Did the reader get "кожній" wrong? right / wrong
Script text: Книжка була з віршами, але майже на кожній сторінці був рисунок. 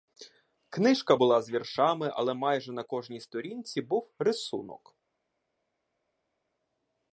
right